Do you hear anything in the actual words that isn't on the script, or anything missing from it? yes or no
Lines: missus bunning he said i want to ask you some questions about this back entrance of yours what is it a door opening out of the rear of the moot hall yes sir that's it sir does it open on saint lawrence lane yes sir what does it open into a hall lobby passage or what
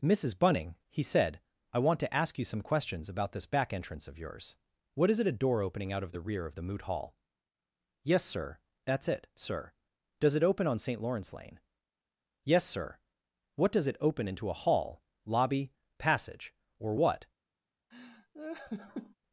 no